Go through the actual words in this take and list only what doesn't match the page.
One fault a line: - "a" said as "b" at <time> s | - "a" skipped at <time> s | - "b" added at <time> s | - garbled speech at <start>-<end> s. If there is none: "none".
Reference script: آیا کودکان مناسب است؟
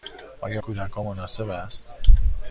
none